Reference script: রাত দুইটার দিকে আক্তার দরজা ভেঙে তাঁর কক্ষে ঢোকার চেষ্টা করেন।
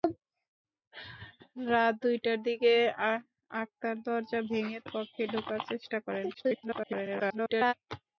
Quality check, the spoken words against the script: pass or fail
fail